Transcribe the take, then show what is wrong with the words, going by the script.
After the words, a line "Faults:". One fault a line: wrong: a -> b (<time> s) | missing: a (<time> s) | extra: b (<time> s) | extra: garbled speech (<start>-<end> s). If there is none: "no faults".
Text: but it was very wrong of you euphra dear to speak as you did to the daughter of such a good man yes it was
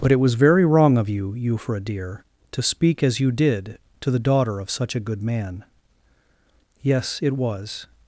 but it was very wrong of you euphra dear to speak as you did to the daughter of such a good man yes it was
Faults:
no faults